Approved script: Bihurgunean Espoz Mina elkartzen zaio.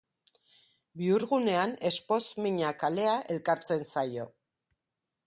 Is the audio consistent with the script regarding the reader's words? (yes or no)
no